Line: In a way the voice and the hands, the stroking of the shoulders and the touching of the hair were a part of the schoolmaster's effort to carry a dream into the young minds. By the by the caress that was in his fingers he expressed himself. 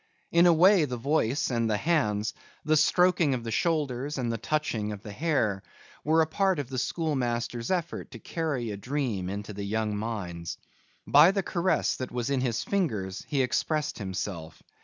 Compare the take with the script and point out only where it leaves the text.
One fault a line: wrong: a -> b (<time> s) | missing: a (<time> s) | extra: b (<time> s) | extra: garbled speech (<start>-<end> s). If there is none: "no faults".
missing: by the (11.4 s)